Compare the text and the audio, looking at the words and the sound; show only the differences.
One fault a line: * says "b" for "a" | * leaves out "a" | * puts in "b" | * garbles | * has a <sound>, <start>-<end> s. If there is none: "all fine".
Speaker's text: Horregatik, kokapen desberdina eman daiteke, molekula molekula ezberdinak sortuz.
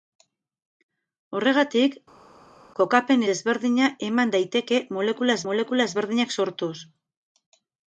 all fine